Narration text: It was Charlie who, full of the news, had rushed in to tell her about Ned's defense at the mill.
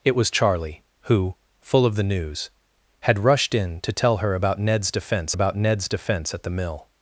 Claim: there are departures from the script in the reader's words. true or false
true